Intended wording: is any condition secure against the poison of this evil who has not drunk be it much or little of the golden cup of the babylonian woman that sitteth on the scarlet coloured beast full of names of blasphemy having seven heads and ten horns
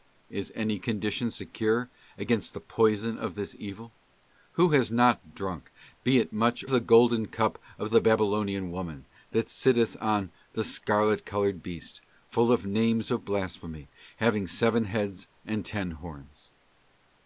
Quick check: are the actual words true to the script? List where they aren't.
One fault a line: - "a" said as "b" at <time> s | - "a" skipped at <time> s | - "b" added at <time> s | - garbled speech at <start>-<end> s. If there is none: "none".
- "or little of" skipped at 6.7 s